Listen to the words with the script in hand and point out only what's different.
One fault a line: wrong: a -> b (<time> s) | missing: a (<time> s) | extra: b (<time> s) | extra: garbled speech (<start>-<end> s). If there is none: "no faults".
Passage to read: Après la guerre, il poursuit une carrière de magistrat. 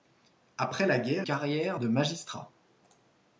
missing: il poursuit une (1.3 s)